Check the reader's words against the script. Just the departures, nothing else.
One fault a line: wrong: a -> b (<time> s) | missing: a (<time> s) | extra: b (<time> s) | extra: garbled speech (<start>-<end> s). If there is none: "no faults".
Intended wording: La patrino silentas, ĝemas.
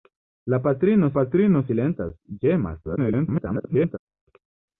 extra: patrino (1.2 s)
extra: garbled speech (2.8-4.0 s)